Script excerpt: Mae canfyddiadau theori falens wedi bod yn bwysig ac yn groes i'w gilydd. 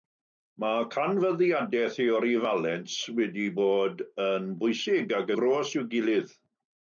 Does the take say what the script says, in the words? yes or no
no